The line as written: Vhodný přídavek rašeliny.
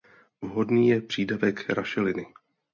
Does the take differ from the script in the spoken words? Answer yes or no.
yes